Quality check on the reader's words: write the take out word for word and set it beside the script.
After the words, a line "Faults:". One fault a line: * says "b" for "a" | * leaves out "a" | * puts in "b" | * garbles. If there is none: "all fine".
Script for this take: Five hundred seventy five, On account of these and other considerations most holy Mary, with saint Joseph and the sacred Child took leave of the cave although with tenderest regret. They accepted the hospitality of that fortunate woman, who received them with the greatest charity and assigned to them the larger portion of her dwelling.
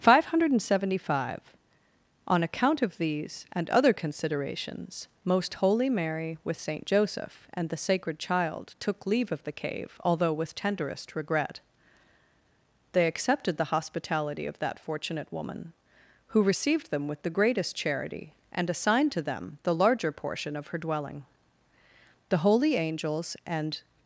Five hundred seventy five, On account of these and other considerations most holy Mary, with saint Joseph and the sacred Child took leave of the cave although with tenderest regret. They accepted the hospitality of that fortunate woman, who received them with the greatest charity and assigned to them the larger portion of her dwelling. The holy angels and.
Faults:
* puts in "The holy angels and"